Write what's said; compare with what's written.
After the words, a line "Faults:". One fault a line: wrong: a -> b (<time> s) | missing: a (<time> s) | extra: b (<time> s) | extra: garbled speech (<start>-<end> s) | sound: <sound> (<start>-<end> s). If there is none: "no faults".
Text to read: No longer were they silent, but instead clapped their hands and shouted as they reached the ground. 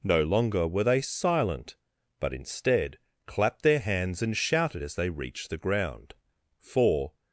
No longer were they silent, but instead clapped their hands and shouted as they reached the ground. For
Faults:
extra: For (6.6 s)